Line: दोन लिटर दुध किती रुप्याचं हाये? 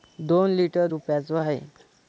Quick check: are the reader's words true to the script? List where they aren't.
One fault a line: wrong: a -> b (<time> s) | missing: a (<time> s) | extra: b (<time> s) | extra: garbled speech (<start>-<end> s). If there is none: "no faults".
missing: दुध किती (0.9 s)